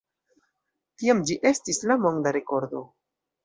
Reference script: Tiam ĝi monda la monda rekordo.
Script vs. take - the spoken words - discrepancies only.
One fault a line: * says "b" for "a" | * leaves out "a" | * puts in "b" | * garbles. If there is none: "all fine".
* says "estis" for "monda"